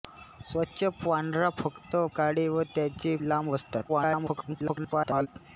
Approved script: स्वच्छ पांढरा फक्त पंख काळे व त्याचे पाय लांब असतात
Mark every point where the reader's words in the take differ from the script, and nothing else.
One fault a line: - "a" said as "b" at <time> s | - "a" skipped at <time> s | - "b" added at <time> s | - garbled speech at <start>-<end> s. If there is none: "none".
- "पंख" skipped at 1.9 s
- "पाय" skipped at 3.1 s
- garbled speech at 3.9-5.3 s